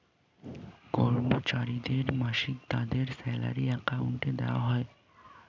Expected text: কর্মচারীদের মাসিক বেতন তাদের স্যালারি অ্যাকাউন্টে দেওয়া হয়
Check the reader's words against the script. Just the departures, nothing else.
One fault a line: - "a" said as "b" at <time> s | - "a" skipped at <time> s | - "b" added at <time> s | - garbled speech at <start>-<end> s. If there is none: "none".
- "বেতন" skipped at 2.6 s